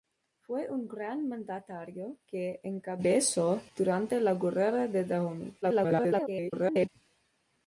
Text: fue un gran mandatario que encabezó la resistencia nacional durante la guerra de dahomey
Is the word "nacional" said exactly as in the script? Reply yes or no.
no